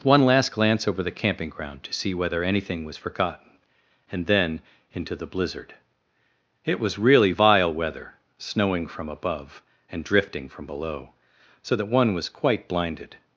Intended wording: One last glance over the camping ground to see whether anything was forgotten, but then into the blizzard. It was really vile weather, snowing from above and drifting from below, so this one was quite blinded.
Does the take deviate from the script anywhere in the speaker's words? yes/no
yes